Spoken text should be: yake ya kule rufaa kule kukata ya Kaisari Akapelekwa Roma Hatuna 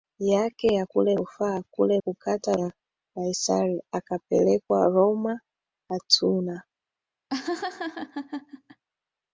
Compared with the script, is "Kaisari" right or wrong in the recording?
right